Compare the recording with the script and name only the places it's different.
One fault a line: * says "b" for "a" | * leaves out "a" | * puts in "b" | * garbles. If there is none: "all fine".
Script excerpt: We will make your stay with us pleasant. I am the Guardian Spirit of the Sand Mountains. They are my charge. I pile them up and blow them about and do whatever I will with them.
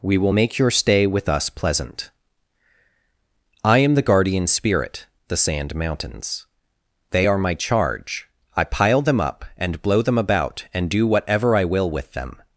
* leaves out "of"